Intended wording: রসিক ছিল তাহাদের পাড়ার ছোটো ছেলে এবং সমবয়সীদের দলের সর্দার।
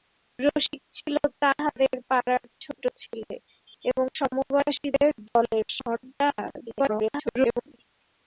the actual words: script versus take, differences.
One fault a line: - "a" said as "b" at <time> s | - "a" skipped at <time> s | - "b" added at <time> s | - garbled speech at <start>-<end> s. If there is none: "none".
- garbled speech at 6.6-7.7 s